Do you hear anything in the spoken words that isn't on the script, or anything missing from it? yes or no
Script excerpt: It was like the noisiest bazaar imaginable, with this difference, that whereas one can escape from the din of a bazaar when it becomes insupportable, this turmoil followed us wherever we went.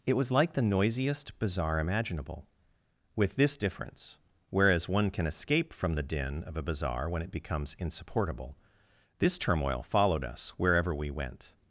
yes